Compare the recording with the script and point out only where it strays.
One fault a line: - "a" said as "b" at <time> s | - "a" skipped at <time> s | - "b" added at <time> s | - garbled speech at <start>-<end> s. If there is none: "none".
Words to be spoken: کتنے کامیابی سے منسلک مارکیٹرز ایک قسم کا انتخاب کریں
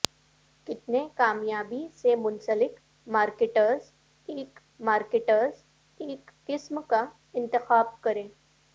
- "مارکیٹرز ایک" added at 4.8 s